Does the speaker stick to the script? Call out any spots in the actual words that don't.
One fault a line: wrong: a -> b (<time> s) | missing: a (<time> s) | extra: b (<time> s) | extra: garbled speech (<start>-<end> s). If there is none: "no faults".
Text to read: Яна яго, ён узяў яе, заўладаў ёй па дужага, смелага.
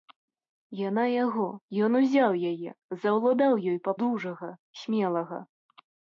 no faults